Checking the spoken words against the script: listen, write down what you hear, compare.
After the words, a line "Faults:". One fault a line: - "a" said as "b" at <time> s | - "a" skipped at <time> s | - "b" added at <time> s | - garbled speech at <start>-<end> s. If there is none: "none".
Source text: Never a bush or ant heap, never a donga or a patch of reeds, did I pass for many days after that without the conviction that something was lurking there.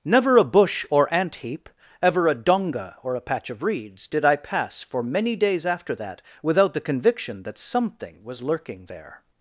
Never a bush or ant heap, ever a donga or a patch of reeds, did I pass for many days after that without the conviction that something was lurking there.
Faults:
- "never" said as "ever" at 2.0 s